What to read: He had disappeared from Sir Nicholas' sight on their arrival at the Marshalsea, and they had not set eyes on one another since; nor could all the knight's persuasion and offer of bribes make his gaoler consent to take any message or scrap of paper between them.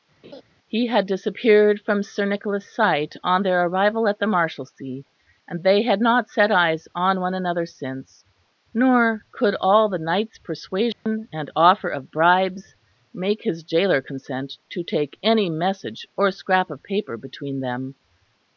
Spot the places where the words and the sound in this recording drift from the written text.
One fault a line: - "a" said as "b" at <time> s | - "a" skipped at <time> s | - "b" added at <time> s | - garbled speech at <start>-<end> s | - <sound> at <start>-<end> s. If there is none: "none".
- laugh at 0.2-0.4 s
- dropout at 10.9-11.1 s